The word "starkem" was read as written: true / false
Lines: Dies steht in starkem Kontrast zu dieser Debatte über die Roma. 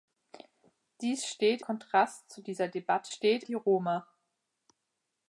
false